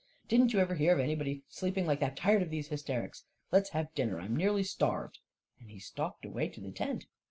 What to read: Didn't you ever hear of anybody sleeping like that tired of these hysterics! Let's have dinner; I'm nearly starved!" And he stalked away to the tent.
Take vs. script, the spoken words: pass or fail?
pass